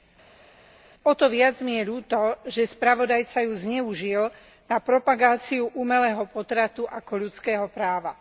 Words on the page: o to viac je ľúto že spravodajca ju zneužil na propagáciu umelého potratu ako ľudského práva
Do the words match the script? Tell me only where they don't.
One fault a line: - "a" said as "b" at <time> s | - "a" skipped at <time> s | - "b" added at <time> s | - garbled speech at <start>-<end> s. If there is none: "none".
- "mi" added at 1.6 s